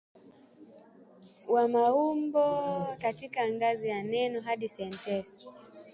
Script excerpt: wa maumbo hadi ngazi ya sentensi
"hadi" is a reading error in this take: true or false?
true